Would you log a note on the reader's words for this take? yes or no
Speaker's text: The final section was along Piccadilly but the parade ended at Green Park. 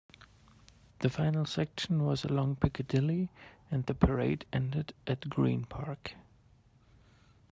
yes